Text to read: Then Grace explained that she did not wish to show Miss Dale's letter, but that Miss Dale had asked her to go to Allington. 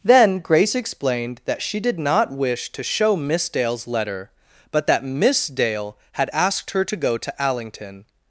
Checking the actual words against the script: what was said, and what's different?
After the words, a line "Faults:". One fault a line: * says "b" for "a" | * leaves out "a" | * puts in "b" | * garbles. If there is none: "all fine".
Then Grace explained that she did not wish to show Miss Dale's letter, but that Miss Dale had asked her to go to Allington.
Faults:
all fine